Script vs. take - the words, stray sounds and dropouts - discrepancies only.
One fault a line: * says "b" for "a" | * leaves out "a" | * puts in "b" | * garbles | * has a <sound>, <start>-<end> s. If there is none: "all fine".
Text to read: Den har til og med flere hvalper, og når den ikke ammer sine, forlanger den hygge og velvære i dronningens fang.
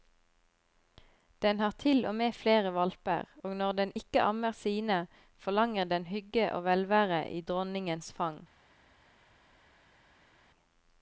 all fine